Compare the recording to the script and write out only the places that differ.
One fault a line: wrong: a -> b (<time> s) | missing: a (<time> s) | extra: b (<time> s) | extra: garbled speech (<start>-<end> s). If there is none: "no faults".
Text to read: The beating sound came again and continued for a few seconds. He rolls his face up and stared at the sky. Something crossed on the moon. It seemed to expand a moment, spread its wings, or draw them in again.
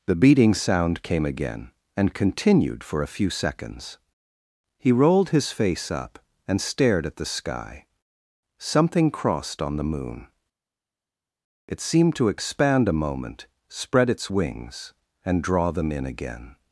wrong: rolls -> rolled (4.9 s)
wrong: or -> and (15.2 s)